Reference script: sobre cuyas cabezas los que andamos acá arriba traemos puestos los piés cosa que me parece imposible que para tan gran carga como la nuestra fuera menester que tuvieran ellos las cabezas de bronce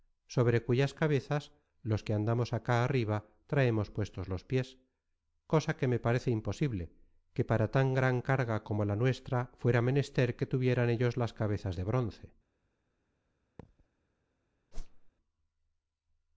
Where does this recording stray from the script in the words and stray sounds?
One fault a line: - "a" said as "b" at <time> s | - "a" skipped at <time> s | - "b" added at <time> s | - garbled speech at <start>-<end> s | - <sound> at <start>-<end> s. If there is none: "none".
- thud at 13.6-13.9 s
- whoosh at 14.7-15.1 s